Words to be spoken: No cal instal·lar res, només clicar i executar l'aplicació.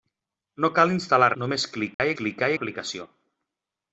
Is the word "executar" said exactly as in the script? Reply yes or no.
no